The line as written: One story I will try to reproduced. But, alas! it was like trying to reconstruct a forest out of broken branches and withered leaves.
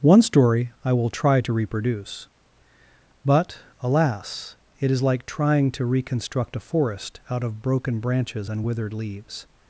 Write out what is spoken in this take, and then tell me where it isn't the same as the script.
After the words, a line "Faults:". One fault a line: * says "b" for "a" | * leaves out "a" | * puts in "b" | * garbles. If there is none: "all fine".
One story I will try to reproduce. But, alas! it is like trying to reconstruct a forest out of broken branches and withered leaves.
Faults:
* says "reproduce" for "reproduced"
* says "is" for "was"